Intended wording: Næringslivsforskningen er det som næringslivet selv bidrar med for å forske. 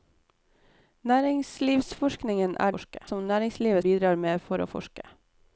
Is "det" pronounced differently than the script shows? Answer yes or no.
yes